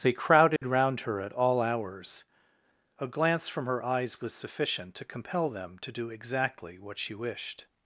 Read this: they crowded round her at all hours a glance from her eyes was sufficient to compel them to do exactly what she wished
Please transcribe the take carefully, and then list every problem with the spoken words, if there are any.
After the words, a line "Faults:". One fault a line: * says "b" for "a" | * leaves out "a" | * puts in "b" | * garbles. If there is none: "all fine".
they crowded round her at all hours a glance from her eyes was sufficient to compel them to do exactly what she wished
Faults:
all fine